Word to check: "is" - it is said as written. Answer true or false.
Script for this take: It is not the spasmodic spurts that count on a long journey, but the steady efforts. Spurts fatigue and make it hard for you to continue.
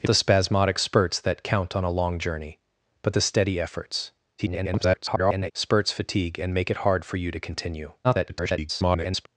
false